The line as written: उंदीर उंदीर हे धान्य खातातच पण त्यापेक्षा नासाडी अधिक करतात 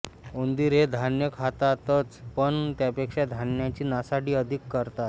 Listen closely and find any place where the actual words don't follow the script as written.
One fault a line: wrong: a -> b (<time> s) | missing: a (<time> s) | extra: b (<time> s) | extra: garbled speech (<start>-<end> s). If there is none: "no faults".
missing: उंदीर (0.7 s)
extra: धान्याची (3.3 s)